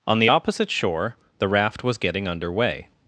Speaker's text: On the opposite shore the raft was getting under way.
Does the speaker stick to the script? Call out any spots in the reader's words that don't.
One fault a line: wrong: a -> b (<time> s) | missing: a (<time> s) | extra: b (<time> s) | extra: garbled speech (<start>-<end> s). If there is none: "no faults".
no faults